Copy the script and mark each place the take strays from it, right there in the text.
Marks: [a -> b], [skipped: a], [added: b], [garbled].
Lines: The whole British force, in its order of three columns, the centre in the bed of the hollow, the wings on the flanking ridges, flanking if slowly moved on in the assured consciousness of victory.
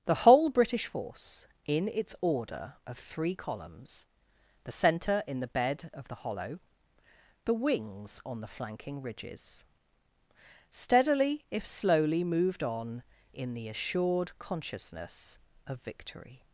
The whole British force, in its order of three columns, the centre in the bed of the hollow, the wings on the flanking ridges, [flanking -> steadily] if slowly moved on in the assured consciousness of victory.